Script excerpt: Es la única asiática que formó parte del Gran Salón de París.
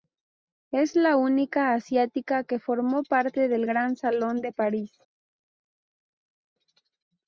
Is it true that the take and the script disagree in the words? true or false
false